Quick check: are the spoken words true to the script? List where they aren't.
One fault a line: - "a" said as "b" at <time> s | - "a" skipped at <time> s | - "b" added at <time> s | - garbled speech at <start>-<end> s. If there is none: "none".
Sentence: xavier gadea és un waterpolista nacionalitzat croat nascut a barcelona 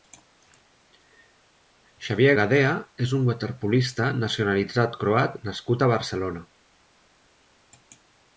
none